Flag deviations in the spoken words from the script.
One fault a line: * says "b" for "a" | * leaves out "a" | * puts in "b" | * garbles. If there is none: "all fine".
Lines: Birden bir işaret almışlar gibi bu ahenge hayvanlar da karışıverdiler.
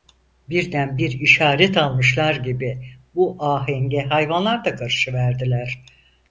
all fine